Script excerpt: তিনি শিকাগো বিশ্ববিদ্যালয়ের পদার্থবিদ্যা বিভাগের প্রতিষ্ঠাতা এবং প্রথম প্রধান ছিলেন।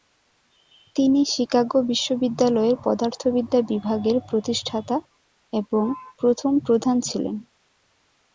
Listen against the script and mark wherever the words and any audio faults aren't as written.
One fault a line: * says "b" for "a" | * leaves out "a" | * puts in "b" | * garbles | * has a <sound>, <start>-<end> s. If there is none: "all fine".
all fine